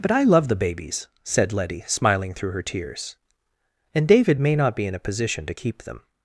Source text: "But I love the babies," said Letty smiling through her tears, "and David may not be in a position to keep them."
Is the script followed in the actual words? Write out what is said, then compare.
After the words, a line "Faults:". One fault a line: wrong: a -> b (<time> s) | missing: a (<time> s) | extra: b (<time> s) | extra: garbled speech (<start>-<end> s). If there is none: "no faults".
"But I love the babies," said Letty smiling through her tears, "and David may not be in a position to keep them."
Faults:
no faults